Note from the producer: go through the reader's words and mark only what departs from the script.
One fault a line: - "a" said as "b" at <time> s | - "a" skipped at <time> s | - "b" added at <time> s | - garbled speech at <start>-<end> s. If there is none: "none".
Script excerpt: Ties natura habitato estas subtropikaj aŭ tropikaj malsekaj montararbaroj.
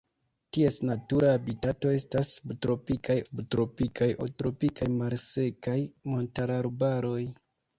- "subtropikaj" added at 3.2 s